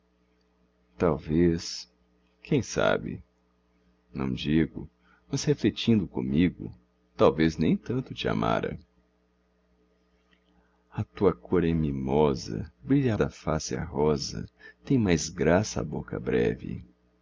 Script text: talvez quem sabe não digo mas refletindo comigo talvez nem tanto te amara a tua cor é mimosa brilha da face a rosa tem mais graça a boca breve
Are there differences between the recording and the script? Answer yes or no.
no